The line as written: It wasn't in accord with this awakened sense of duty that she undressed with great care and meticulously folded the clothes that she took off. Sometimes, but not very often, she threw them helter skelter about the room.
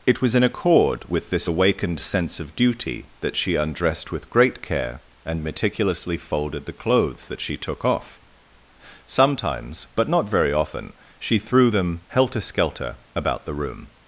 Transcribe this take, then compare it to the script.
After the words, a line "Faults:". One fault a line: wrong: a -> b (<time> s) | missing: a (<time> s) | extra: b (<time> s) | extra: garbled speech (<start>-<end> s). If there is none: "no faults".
It was in accord with this awakened sense of duty that she undressed with great care and meticulously folded the clothes that she took off. Sometimes, but not very often, she threw them helter skelter about the room.
Faults:
wrong: wasn't -> was (0.2 s)